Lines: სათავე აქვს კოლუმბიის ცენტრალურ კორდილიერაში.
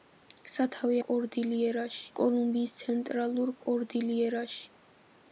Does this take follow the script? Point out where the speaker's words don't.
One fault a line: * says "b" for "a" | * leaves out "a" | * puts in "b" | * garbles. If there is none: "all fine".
* says "კორდილიერაში" for "აქვს"